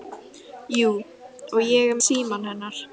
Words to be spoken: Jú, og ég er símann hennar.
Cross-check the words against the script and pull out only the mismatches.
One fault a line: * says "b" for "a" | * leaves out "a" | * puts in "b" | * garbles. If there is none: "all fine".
all fine